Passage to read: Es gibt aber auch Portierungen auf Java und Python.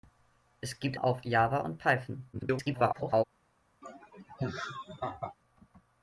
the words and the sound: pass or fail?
fail